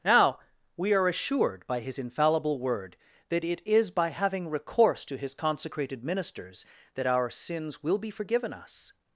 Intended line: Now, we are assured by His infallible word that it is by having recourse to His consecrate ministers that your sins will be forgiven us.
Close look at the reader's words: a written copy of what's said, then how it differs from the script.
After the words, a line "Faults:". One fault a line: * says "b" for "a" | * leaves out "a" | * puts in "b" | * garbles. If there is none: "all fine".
Now, we are assured by His infallible word that it is by having recourse to His consecrated ministers that our sins will be forgiven us.
Faults:
* says "consecrated" for "consecrate"
* says "our" for "your"